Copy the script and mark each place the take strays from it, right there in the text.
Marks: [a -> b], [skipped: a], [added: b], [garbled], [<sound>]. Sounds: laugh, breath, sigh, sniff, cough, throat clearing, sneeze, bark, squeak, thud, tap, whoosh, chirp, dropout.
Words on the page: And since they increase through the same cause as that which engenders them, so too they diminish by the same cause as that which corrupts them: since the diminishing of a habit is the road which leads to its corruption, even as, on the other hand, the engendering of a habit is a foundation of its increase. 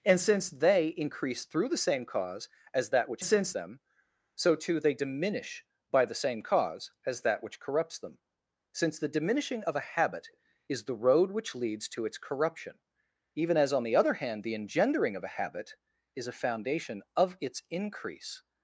And since they increase through the same cause as that which [engenders -> since] them, so too they diminish by the same cause as that which corrupts them: since the diminishing of a habit is the road which leads to its corruption, even as, on the other hand, the engendering of a habit is a foundation of its increase.